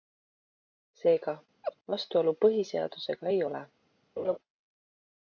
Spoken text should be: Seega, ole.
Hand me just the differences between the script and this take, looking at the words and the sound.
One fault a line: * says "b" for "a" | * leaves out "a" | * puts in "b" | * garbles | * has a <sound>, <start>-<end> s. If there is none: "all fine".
* has a laugh, 1.6-1.8 s
* puts in "vastuolu põhiseadusega ei"
* has a laugh, 4.2-4.4 s